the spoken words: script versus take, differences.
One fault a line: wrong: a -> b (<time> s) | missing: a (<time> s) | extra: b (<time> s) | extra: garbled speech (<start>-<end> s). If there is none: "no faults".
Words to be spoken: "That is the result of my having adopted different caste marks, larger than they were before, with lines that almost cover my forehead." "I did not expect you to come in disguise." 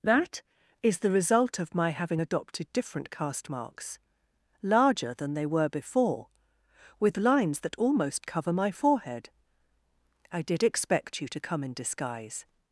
missing: not (10.6 s)